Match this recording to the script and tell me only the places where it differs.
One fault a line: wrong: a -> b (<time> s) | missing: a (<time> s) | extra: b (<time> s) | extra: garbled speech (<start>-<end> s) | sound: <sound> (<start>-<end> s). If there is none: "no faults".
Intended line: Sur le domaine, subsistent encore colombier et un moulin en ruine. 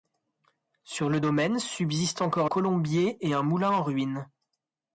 no faults